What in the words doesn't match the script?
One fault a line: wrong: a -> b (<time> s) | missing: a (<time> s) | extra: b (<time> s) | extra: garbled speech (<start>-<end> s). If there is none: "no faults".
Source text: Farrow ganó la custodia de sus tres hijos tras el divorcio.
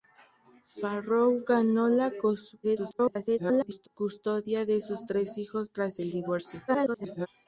extra: garbled speech (2.6-3.9 s)
extra: garbled speech (6.7-7.3 s)